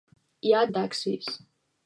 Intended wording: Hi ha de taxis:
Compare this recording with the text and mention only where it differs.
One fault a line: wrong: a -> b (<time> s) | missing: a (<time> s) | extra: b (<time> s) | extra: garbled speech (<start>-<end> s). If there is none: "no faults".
no faults